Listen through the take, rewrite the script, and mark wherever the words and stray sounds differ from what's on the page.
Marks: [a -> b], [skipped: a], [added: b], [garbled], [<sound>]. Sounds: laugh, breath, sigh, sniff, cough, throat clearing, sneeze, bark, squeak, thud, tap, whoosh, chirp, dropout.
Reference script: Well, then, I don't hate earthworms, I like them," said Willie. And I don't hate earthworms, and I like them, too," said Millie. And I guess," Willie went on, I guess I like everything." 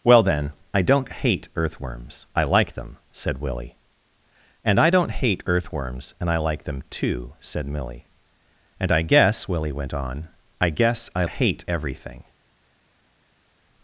Well, then, I don't hate earthworms, I like them," said Willie. And I don't hate earthworms, and I like them, too," said Millie. And I guess," Willie went on, I guess I [like -> hate] everything."